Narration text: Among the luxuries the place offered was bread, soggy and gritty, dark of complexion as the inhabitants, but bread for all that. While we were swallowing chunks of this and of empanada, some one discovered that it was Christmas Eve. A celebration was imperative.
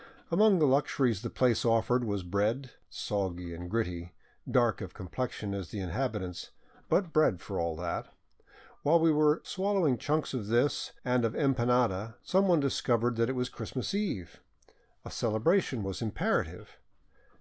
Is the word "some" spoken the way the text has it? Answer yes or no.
yes